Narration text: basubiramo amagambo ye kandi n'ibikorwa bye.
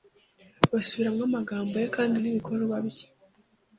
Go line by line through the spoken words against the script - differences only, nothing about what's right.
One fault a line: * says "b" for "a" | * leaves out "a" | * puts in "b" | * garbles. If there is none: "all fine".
all fine